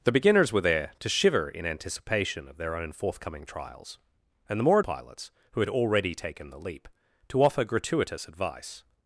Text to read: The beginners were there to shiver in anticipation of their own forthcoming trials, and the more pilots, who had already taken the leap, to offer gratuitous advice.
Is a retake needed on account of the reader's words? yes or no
no